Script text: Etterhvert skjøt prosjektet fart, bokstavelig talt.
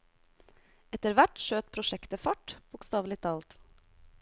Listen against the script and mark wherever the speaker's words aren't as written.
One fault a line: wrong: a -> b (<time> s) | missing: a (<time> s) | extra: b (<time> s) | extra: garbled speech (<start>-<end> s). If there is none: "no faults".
no faults